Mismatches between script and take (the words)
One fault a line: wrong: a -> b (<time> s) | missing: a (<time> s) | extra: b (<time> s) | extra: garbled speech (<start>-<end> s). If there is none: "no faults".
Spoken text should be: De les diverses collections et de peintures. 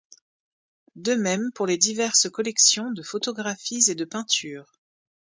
extra: même pour (1.1 s)
extra: de photographies (2.9 s)